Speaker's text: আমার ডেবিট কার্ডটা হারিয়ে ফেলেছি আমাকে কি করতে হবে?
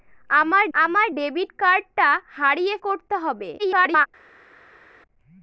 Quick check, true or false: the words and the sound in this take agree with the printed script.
false